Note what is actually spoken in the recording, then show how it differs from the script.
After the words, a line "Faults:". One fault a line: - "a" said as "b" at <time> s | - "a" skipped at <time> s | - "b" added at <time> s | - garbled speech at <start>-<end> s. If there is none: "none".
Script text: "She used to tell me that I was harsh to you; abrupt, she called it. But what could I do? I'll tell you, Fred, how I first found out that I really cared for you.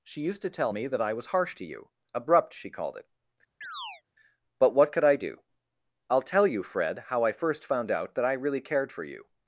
"She used to tell me that I was harsh to you; abrupt, she called it. But what could I do? I'll tell you, Fred, how I first found out that I really cared for you.
Faults:
none